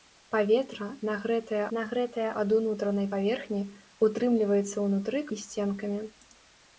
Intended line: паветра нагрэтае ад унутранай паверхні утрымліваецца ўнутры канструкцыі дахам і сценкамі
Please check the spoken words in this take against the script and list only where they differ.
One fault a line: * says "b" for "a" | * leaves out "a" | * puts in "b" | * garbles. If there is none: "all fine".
* puts in "нагрэтае"
* leaves out "канструкцыі дахам"